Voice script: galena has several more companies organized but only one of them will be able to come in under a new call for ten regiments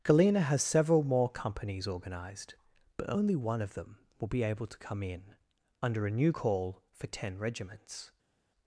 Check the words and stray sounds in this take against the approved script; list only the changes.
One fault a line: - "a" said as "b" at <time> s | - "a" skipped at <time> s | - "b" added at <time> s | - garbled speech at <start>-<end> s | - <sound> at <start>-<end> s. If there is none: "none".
none